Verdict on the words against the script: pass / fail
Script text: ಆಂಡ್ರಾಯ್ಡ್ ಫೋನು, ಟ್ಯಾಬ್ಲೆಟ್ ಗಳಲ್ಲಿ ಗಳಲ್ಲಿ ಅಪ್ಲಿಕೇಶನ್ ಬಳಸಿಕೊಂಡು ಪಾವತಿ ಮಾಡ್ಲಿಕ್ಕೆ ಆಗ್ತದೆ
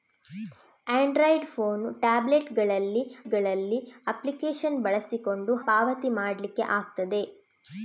pass